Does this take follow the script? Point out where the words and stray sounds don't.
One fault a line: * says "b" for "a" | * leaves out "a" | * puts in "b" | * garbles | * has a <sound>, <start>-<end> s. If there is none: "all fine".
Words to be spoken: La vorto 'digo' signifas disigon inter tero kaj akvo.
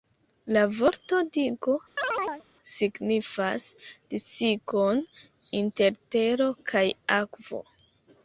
* has a chirp, 2.0-2.4 s